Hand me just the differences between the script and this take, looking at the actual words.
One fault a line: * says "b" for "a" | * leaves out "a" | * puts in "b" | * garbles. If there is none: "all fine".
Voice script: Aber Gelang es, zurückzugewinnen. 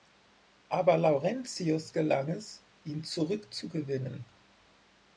* puts in "Laurentius"
* puts in "ihn"